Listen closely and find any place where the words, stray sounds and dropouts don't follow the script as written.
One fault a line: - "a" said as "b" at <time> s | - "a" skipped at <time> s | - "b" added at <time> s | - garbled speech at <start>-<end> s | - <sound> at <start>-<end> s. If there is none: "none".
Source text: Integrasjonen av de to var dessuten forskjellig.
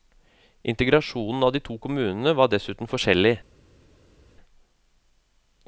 - "kommunene" added at 1.9 s